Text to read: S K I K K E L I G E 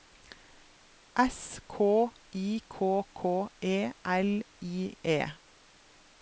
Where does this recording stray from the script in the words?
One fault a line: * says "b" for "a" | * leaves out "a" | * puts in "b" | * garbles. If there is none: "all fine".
* leaves out "G"